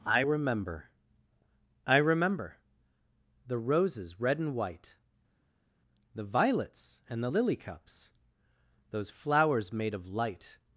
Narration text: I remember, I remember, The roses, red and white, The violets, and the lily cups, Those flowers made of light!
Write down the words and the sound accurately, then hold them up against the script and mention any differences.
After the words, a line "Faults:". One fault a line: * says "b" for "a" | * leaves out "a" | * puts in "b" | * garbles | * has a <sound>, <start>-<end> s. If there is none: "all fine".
I remember, I remember, The roses, red and white, The violets, and the lily cups, Those flowers made of light!
Faults:
all fine